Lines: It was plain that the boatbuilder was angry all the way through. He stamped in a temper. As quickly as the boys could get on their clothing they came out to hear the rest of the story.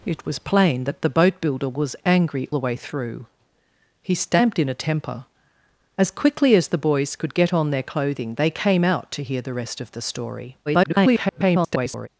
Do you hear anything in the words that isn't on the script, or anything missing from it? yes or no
yes